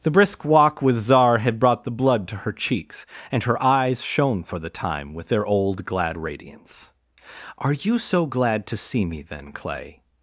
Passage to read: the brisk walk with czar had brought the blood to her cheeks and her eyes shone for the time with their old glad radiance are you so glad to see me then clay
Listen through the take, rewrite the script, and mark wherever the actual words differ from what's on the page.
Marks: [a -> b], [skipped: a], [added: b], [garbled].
the brisk walk with czar had brought the blood to her cheeks and her eyes shone for the time with their old glad radiance are you so glad to see me then clay